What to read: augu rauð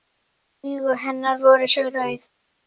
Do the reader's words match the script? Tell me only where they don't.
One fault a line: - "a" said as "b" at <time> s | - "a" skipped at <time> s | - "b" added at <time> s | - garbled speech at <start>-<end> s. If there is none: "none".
- "hennar voru svo" added at 1.0 s